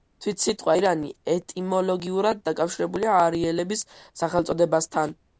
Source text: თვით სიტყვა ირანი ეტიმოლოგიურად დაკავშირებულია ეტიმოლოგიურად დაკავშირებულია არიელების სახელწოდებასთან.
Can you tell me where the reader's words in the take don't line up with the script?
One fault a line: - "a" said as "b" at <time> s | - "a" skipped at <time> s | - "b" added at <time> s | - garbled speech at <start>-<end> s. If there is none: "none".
- "ეტიმოლოგიურად დაკავშირებულია" skipped at 3.2 s